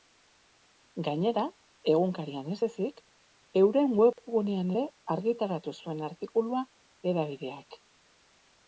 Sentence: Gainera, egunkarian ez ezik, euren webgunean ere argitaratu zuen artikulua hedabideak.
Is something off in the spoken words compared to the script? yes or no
no